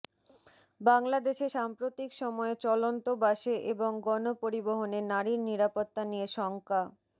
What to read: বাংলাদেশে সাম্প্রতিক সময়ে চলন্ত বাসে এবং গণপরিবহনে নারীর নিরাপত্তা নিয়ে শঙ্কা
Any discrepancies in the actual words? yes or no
no